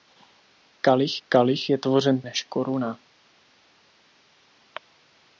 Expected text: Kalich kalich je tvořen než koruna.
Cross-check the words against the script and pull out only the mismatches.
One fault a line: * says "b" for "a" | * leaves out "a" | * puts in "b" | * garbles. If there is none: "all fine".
all fine